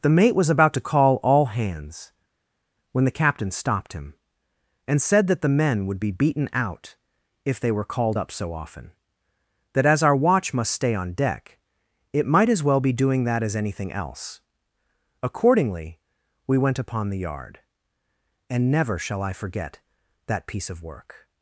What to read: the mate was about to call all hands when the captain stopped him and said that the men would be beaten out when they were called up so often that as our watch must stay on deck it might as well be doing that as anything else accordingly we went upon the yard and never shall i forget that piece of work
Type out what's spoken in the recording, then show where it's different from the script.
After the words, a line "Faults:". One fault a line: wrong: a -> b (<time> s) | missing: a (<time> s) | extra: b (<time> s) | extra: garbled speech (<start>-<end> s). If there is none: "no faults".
the mate was about to call all hands when the captain stopped him and said that the men would be beaten out if they were called up so often that as our watch must stay on deck it might as well be doing that as anything else accordingly we went upon the yard and never shall i forget that piece of work
Faults:
wrong: when -> if (7.5 s)